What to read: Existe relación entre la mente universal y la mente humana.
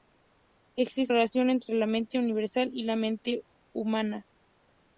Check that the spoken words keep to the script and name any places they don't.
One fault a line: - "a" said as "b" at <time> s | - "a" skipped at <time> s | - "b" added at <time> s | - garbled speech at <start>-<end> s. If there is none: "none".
none